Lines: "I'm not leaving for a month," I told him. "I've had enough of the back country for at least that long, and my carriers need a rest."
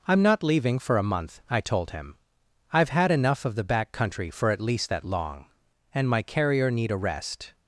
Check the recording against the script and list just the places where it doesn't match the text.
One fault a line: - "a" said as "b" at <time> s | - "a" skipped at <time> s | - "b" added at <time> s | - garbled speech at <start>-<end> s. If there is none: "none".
- "carriers" said as "carrier" at 6.2 s